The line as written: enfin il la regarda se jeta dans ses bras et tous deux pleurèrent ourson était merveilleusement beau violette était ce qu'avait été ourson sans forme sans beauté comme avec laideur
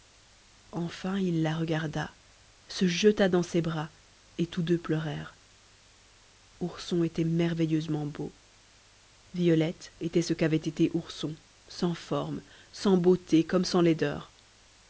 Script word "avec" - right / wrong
wrong